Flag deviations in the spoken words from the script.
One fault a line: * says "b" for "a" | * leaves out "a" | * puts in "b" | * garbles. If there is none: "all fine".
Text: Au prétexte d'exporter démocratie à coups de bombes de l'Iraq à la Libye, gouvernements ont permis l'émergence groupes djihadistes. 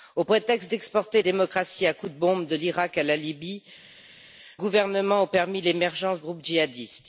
all fine